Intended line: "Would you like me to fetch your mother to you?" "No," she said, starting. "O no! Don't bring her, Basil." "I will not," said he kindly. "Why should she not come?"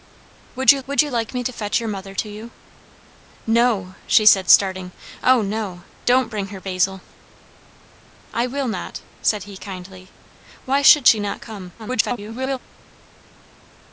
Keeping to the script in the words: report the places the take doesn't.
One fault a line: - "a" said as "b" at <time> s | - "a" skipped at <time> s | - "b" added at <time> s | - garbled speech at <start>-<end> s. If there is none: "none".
- "would you" added at 0.9 s
- garbled speech at 11.8-12.6 s